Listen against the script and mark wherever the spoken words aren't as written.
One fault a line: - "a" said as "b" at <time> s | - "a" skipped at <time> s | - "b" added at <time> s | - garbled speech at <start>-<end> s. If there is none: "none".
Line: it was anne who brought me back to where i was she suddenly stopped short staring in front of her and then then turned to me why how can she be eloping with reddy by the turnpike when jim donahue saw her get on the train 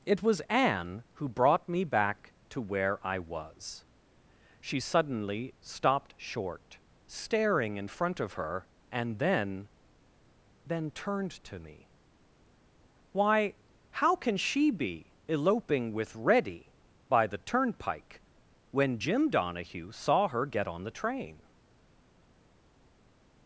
none